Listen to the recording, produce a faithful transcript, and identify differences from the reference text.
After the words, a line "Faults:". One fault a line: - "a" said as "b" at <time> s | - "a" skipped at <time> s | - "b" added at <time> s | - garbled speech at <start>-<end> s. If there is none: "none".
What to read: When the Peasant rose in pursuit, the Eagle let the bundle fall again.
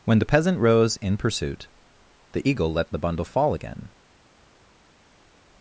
When the Peasant rose in pursuit, the Eagle let the bundle fall again.
Faults:
none